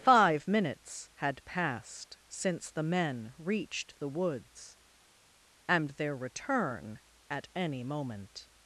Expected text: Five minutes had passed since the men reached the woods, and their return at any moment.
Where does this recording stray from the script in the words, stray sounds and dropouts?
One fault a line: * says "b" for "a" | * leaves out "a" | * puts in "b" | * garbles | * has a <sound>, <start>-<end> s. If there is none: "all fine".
all fine